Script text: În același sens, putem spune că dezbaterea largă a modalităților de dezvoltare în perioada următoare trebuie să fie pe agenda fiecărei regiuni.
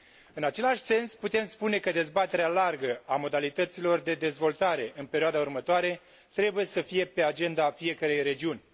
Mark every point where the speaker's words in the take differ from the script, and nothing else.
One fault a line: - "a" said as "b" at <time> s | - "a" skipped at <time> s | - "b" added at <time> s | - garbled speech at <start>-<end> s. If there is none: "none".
none